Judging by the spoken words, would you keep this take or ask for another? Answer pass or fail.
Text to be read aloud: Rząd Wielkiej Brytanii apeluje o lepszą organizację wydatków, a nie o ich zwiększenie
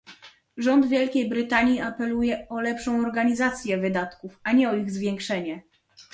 pass